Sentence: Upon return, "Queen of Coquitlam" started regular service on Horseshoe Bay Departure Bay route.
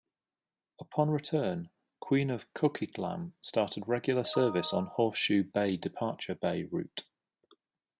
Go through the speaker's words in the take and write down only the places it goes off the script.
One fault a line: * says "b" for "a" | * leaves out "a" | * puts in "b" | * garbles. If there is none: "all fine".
all fine